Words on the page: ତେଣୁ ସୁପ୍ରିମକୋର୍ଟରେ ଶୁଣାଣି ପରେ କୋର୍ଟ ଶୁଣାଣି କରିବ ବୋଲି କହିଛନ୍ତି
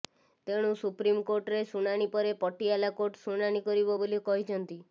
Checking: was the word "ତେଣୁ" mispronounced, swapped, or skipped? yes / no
no